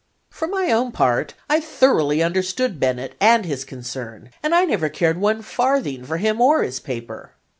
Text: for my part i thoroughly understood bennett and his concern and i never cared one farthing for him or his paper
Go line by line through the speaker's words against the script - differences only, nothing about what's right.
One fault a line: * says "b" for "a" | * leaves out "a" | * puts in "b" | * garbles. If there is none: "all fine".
* puts in "own"